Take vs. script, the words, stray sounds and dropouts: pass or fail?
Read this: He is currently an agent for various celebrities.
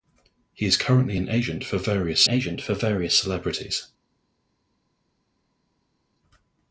fail